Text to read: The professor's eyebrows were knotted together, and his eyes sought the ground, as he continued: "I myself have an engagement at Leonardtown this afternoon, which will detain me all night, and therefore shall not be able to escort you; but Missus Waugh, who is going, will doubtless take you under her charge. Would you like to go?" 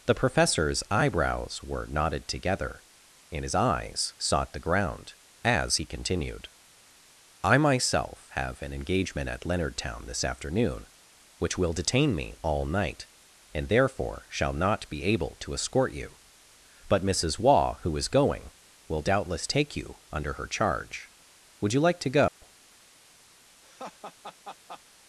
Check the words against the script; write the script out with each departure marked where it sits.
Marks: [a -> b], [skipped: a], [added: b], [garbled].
The professor's eyebrows were knotted together, and his eyes sought the ground, as he continued: "I myself have an engagement at Leonardtown this afternoon, which will detain me all night, and therefore shall not be able to escort you; but Missus Waugh, who is going, will doubtless take you under her charge. Would you like to go?"